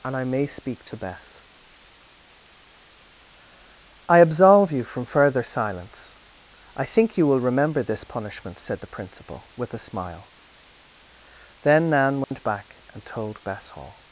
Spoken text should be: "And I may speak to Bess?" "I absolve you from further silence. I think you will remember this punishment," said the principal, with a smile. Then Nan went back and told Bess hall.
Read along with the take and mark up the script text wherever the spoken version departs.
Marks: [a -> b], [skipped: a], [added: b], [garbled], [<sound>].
"And I may speak to Bess?" "I absolve you from further silence. I think you will remember this punishment," said the principal, with a smile. Then Nan went [dropout] back and told Bess hall.